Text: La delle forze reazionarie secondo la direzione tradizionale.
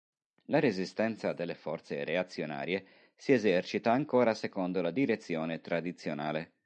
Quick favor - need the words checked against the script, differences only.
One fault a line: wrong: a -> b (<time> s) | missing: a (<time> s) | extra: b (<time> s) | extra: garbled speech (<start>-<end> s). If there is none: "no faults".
extra: resistenza (0.6 s)
extra: si esercita ancora (3.1 s)